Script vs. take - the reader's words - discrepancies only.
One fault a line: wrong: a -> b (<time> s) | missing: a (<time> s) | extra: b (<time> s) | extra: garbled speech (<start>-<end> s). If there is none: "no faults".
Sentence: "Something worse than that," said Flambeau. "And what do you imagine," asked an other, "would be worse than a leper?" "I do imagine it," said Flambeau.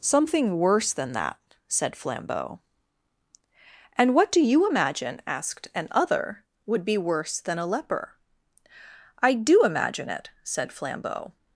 no faults